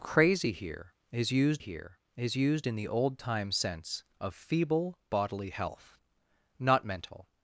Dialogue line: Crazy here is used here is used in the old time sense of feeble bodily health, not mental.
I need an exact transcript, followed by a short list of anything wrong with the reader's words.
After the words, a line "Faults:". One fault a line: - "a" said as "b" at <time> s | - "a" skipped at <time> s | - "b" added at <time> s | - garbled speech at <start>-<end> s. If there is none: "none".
Crazy here is used here is used in the old time sense of feeble bodily health, not mental.
Faults:
none